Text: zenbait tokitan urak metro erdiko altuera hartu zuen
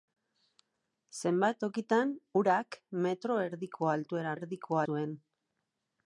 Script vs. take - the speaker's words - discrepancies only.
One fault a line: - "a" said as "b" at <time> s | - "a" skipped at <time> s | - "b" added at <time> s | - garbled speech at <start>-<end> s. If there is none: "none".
- "hartu" said as "erdiko" at 4.4 s